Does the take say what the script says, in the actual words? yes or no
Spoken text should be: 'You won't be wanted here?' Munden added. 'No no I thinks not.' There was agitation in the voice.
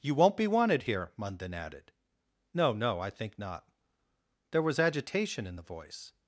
no